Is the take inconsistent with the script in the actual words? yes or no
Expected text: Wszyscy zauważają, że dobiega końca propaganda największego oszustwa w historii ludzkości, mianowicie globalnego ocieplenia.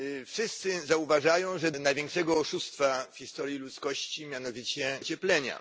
yes